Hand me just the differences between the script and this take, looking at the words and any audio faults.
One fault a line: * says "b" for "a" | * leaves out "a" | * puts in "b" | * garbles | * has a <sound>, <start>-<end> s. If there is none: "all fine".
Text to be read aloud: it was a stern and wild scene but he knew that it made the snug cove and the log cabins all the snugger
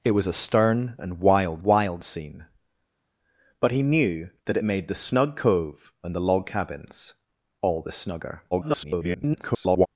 * puts in "wild"
* garbles